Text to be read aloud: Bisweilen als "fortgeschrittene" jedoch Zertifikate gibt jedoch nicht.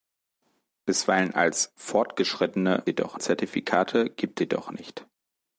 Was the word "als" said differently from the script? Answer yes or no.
no